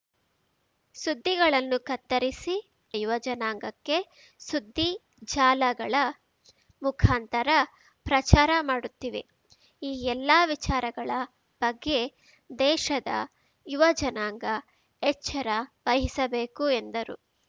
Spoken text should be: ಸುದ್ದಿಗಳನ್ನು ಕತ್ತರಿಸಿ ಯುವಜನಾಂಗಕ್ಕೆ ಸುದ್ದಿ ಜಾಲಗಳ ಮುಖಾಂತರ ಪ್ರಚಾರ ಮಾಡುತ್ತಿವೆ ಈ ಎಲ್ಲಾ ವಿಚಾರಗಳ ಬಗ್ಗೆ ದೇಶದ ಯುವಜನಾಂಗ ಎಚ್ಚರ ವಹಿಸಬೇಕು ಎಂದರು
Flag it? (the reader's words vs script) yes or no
no